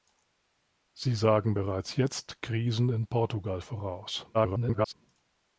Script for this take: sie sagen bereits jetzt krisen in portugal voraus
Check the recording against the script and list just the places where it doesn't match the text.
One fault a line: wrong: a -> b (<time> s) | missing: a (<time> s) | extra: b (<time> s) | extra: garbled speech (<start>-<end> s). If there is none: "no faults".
extra: garbled speech (4.3-4.9 s)